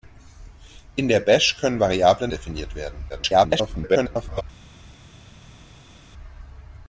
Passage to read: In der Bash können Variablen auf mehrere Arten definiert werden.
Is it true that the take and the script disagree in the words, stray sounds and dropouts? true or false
true